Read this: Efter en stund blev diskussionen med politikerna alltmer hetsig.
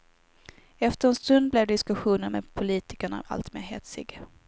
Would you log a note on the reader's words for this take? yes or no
no